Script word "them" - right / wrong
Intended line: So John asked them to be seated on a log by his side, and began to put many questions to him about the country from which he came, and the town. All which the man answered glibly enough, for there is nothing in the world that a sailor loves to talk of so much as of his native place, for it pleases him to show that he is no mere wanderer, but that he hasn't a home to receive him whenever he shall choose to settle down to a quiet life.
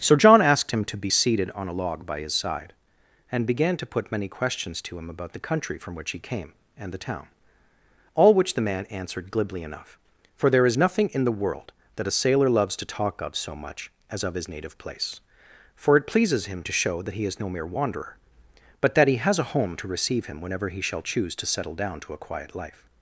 wrong